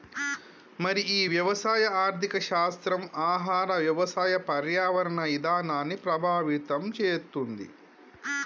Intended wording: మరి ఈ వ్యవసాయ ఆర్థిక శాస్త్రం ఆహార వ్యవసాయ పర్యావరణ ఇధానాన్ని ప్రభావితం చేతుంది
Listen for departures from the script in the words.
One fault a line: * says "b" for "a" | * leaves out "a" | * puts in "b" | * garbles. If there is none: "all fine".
all fine